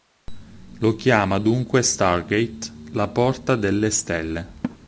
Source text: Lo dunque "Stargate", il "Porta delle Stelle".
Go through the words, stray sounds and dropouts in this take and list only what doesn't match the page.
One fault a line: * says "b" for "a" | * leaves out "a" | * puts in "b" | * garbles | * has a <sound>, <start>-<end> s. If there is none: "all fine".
* puts in "chiama"
* says "la" for "il"
* has a laugh, 4.6-4.8 s